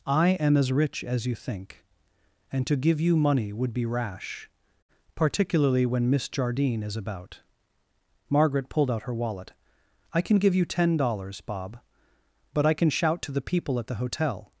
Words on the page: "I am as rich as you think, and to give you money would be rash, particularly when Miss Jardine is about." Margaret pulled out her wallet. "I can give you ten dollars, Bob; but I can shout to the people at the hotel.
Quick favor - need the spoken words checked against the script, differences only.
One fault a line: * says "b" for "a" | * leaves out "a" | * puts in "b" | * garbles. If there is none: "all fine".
all fine